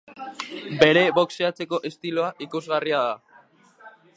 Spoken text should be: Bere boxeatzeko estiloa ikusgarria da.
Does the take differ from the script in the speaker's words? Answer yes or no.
no